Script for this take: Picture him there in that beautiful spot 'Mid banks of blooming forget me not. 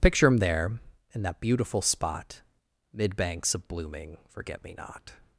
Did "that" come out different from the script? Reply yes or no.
no